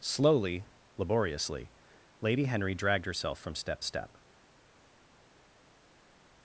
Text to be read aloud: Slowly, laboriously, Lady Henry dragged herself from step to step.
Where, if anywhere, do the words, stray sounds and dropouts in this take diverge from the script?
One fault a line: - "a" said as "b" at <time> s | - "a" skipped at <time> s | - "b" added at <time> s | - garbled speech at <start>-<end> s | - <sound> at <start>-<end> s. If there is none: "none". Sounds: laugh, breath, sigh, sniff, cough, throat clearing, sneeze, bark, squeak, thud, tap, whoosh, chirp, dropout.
- "to" skipped at 3.8 s